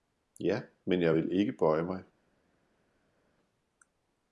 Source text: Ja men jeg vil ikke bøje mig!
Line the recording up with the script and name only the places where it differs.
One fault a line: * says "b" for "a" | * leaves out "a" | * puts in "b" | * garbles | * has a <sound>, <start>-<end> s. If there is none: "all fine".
all fine